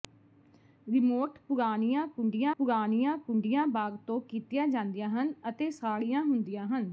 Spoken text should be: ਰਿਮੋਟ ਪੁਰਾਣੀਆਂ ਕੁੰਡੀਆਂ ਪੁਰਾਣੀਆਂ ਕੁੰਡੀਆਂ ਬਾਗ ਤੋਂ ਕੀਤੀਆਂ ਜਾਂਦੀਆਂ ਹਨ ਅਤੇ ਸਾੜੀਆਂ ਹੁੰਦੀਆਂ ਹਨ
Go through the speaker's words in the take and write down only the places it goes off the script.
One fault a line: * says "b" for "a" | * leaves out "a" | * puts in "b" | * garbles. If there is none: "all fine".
all fine